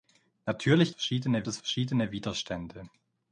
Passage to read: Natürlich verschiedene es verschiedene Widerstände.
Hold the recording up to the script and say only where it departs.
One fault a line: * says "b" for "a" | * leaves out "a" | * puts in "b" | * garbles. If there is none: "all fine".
all fine